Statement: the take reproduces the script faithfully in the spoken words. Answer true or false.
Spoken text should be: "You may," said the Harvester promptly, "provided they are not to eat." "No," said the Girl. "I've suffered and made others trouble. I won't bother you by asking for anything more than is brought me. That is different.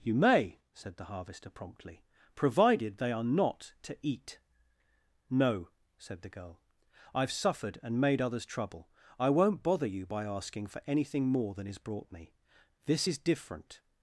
false